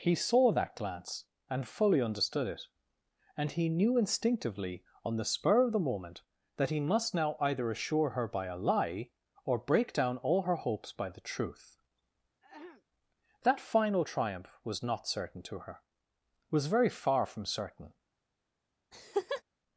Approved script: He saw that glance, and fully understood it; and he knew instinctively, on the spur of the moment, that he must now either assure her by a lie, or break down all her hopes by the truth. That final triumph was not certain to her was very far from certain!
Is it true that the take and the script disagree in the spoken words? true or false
false